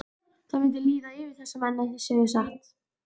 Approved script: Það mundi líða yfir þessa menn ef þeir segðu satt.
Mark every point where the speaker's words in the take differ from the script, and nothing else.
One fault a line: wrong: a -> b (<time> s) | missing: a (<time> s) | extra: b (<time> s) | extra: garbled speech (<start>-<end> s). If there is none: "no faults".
no faults